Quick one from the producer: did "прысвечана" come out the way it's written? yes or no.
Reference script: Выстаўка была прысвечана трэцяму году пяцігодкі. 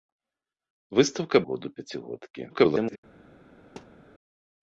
no